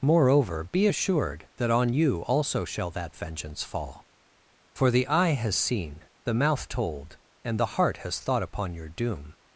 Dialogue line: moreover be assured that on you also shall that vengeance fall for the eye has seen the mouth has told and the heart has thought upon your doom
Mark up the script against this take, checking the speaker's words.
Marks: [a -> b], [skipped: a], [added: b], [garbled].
moreover be assured that on you also shall that vengeance fall for the eye has seen the mouth [skipped: has] told and the heart has thought upon your doom